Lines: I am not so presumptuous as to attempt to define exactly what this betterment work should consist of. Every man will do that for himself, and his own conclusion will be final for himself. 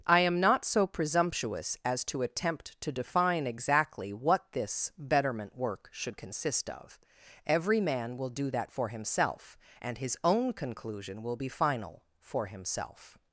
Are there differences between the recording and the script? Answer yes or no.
no